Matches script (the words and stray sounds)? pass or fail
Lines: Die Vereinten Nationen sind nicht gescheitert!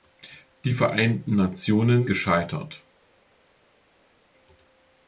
fail